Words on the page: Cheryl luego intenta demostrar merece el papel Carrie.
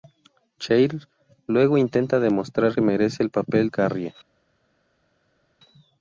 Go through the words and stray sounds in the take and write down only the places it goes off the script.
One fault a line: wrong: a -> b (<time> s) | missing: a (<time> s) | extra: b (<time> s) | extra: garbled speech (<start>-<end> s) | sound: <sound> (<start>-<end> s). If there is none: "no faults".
no faults